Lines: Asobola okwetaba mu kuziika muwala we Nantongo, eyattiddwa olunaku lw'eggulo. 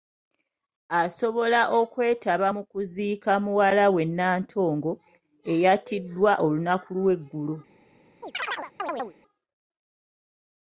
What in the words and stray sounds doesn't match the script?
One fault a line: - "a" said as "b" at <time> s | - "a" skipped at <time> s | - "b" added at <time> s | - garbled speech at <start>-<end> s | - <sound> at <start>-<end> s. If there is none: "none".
- chirp at 8.2-9.2 s